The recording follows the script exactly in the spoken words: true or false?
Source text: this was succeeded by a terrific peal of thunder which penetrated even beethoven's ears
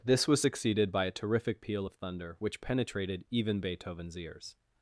true